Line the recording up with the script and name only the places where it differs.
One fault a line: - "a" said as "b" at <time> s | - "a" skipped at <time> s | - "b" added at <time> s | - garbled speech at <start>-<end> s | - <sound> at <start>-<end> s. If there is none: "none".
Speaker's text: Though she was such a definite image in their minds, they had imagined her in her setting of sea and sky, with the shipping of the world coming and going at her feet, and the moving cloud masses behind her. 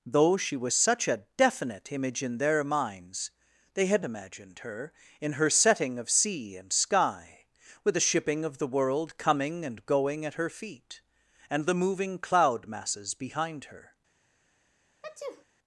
- sneeze at 15.0-15.4 s